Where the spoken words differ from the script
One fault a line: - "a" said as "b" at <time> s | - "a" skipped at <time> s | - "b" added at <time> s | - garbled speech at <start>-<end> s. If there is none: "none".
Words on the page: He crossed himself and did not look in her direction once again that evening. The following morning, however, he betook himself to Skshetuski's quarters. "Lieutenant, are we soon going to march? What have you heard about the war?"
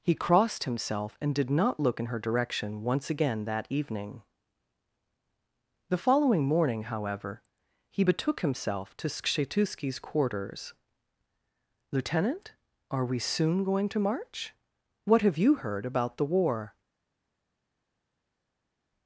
none